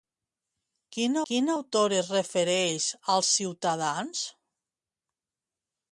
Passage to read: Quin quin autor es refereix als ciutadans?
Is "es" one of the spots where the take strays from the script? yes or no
no